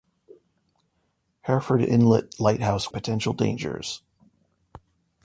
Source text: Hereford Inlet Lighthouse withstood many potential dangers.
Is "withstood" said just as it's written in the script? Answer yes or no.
no